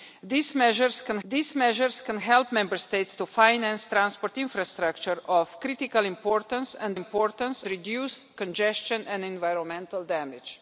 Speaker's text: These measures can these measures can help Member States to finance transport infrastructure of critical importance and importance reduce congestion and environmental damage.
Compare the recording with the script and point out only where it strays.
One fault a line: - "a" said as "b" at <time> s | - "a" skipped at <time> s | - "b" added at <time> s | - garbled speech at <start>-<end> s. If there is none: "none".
none